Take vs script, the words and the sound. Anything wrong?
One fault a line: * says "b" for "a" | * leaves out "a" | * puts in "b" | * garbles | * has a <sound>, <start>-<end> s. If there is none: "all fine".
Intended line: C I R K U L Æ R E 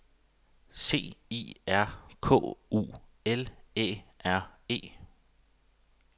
all fine